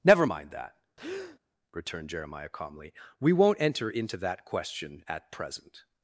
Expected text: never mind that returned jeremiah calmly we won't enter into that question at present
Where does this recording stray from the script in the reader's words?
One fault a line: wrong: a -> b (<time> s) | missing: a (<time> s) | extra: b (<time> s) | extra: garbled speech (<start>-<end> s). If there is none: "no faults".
no faults